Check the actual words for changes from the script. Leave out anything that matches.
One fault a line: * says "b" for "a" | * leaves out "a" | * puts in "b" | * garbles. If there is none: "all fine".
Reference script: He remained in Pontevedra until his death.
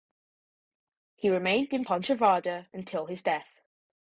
all fine